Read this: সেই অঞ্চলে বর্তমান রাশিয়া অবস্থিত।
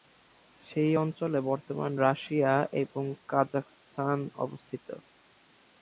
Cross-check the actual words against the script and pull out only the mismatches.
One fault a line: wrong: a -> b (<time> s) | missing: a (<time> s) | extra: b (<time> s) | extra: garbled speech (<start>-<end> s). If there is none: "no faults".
extra: এবং কাজাখস্তান (2.8 s)